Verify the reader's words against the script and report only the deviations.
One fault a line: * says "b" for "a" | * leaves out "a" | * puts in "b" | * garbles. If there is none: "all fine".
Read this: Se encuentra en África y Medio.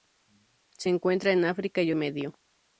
all fine